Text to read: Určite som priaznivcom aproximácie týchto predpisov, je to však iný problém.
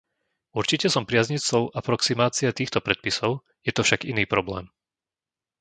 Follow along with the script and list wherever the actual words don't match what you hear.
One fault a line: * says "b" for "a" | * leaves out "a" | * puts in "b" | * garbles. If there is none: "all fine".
all fine